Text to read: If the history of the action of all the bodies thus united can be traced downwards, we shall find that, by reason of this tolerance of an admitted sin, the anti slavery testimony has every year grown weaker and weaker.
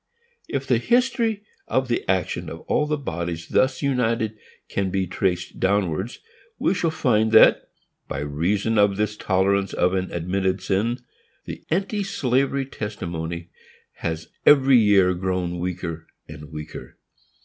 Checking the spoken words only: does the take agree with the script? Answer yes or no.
yes